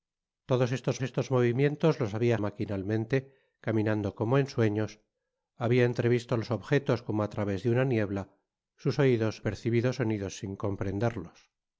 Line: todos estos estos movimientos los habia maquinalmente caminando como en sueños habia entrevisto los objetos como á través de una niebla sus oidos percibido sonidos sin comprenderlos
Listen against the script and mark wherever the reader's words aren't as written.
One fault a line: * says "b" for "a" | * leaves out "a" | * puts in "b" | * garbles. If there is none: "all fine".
all fine